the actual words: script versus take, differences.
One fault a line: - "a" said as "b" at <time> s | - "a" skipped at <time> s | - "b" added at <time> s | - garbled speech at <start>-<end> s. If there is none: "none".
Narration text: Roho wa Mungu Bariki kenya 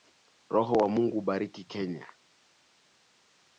none